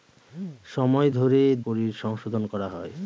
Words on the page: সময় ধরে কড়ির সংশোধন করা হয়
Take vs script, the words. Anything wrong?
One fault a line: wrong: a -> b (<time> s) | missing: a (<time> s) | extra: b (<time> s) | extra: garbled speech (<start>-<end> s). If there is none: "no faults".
no faults